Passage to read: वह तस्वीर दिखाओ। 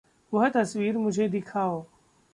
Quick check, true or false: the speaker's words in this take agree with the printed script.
false